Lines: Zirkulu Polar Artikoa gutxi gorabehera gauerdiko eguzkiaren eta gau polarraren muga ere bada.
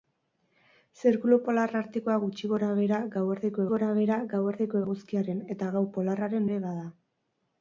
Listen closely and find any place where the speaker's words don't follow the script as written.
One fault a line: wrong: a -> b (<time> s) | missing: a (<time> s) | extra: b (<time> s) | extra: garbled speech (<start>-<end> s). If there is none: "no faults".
extra: gorabehera gauerdiko (3.7 s)
missing: muga (6.5 s)